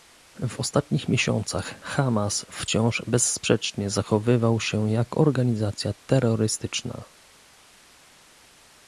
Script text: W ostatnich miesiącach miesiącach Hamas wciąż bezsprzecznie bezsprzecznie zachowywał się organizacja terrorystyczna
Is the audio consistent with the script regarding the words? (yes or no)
no